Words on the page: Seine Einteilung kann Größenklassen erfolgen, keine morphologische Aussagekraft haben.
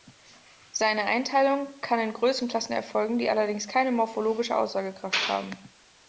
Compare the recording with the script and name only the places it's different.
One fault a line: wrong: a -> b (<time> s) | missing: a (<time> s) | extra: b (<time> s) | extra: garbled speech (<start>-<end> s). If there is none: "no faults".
extra: in (2.0 s)
extra: die allerdings (3.2 s)